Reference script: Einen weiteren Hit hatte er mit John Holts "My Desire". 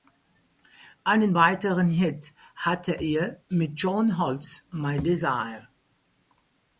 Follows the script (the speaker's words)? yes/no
yes